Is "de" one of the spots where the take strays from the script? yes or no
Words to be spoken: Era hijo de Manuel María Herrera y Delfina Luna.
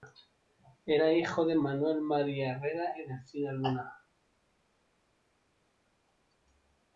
no